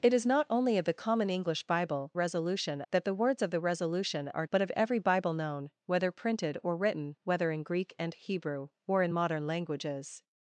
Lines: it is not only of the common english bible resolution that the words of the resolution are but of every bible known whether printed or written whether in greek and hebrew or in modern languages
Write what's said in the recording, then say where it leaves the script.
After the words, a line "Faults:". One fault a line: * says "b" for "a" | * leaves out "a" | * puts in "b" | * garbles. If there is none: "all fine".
it is not only of the common english bible resolution that the words of the resolution are but of every bible known whether printed or written whether in greek and hebrew or in modern languages
Faults:
all fine